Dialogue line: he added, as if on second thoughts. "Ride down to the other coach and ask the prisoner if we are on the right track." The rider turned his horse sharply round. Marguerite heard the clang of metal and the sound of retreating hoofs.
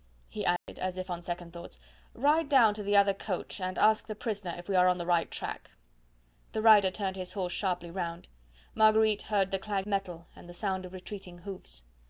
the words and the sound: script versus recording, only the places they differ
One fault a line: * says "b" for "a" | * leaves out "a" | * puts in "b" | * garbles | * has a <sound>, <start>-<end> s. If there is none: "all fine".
* has a dropout, 0.6-0.7 s
* leaves out "of"